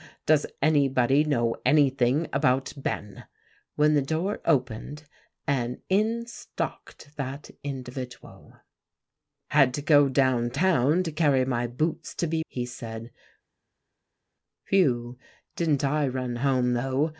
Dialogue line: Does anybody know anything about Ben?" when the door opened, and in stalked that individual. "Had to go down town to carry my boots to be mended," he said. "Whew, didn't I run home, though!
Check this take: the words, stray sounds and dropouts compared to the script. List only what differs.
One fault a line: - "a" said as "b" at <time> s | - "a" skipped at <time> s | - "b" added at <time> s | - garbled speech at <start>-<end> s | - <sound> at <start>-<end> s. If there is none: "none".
- "mended" skipped at 12.4 s